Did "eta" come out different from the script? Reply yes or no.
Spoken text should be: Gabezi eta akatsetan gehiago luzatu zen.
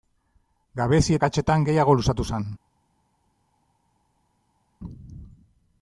yes